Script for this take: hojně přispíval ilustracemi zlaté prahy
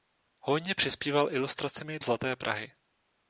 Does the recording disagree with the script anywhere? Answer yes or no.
no